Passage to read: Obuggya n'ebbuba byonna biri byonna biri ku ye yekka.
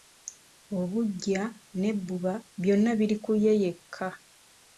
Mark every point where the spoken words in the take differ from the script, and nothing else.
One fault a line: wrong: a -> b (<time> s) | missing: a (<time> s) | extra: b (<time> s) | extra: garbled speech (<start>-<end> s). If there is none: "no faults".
missing: byonna biri (3.1 s)